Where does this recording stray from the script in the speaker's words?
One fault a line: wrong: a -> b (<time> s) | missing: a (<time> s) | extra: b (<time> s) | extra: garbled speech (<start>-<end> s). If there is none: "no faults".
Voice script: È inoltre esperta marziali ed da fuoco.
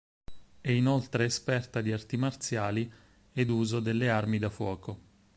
extra: di arti (1.8 s)
extra: uso delle armi (3.5 s)